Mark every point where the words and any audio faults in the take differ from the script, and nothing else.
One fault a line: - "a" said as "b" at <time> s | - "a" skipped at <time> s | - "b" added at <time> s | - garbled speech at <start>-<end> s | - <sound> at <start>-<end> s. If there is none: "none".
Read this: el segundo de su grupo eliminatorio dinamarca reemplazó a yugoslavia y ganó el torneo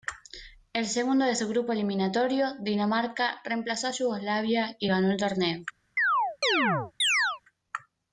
- chirp at 6.0-7.4 s